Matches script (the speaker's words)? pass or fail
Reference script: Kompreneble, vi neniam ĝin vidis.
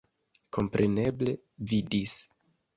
fail